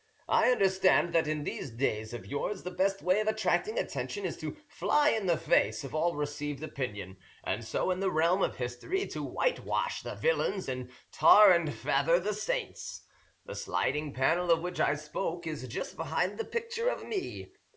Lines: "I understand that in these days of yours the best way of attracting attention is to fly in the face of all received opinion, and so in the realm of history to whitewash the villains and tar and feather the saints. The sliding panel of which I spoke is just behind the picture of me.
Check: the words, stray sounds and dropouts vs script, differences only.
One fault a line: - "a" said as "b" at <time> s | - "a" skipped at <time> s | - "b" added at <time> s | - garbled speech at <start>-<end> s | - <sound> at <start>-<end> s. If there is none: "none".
none